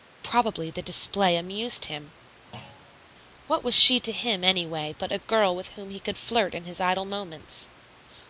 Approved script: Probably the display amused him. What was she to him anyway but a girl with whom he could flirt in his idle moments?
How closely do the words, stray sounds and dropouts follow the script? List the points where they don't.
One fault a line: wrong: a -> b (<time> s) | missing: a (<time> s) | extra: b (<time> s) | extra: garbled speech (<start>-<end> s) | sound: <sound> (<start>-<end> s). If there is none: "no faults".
sound: thud (2.5-3.1 s)